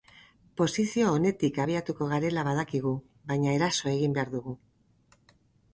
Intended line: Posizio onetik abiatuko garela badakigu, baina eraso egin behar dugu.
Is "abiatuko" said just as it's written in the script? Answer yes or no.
yes